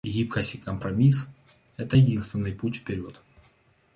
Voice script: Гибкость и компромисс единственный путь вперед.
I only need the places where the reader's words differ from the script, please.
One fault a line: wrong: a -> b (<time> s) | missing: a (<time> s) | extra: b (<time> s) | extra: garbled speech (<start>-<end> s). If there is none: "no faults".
extra: это (1.8 s)